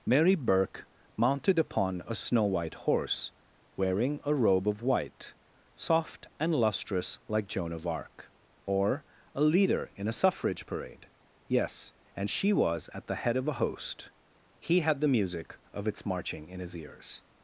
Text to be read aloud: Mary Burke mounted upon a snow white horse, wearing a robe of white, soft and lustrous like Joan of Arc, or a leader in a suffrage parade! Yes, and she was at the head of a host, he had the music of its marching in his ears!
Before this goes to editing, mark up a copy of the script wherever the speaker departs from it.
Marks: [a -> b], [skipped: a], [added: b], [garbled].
Mary Burke mounted upon a snow white horse, wearing a robe of white, soft and lustrous like Joan of Arc, or a leader in a suffrage parade! Yes, and she was at the head of a host, he had the music of its marching in his ears!